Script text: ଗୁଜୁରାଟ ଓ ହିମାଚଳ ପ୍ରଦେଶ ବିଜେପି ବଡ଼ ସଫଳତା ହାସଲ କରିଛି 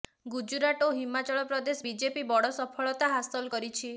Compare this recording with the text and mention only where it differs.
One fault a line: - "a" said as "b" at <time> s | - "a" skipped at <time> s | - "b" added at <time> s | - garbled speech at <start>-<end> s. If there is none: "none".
none